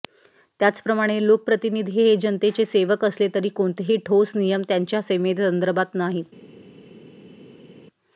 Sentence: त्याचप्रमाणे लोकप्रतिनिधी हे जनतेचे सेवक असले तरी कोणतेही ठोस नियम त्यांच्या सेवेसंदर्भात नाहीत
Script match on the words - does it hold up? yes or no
yes